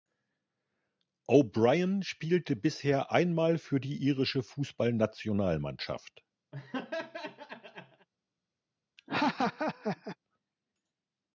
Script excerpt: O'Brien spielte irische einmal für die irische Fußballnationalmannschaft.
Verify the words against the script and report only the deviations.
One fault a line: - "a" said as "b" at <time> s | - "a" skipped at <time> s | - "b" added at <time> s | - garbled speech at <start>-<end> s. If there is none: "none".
- "irische" said as "bisher" at 2.6 s